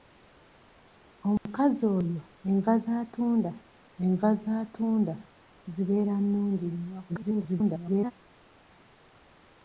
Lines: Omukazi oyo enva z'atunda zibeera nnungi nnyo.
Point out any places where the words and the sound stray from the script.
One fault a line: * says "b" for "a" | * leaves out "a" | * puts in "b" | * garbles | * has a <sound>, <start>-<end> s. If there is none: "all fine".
* has a dropout, 1.4-1.5 s
* puts in "enva z'atunda"
* garbles